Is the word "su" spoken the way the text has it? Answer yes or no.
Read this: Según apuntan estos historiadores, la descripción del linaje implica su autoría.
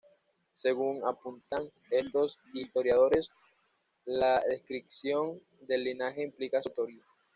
no